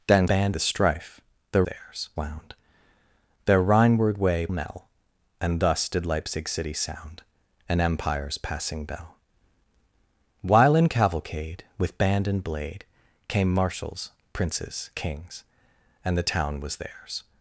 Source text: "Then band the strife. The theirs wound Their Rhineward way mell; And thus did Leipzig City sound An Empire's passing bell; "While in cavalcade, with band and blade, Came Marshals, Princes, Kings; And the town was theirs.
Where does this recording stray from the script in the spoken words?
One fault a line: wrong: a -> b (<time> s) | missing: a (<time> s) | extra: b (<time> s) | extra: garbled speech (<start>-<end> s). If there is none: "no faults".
no faults